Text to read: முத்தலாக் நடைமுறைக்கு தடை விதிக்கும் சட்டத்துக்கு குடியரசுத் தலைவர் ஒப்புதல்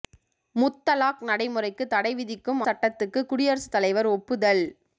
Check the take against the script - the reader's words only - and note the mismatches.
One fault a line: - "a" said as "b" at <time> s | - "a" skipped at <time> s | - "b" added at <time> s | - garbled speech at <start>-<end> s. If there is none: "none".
none